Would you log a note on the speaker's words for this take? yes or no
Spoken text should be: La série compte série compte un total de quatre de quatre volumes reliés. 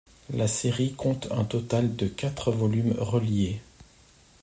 yes